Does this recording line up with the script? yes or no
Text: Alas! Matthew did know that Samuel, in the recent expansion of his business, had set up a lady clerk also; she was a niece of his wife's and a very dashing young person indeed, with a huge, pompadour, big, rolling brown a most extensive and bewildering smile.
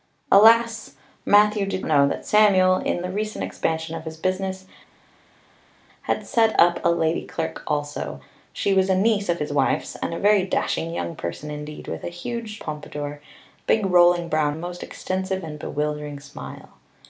yes